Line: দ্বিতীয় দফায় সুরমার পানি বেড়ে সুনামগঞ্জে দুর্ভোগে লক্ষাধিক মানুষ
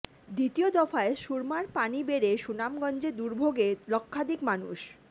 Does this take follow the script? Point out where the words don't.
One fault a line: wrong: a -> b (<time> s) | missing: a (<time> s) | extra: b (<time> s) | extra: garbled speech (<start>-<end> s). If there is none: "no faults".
no faults